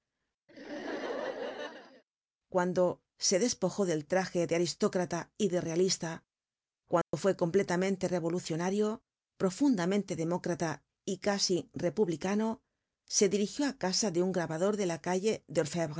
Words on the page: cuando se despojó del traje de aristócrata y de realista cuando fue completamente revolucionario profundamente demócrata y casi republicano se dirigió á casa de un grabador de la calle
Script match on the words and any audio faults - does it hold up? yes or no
no